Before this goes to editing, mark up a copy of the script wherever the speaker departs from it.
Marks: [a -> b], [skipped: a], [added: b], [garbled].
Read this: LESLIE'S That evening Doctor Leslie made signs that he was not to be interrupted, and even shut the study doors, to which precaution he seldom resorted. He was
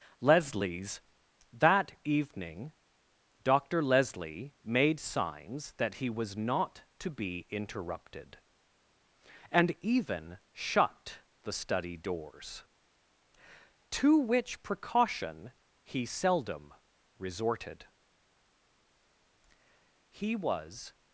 LESLIE'S That evening Doctor Leslie made signs that he was not to be interrupted, and even shut the study doors, to which precaution he seldom resorted. He was